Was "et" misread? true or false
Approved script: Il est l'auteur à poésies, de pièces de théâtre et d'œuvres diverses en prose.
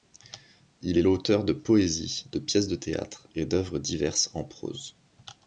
false